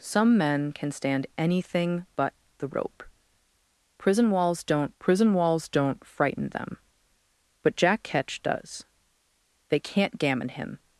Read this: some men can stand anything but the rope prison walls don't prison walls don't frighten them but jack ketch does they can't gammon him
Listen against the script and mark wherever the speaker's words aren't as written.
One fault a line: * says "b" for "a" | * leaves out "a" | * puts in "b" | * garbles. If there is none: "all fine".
all fine